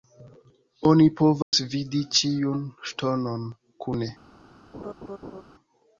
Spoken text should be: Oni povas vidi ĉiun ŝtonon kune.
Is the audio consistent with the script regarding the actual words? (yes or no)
yes